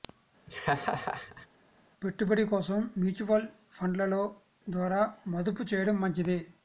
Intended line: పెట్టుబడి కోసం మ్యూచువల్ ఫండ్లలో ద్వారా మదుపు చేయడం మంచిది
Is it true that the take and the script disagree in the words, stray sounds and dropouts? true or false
true